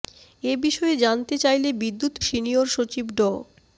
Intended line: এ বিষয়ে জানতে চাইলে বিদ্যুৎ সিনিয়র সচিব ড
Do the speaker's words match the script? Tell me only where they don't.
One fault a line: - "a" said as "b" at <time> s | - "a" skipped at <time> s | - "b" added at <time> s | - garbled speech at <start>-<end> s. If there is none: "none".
none